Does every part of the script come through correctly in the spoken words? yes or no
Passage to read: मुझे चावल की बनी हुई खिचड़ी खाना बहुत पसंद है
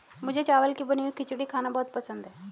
yes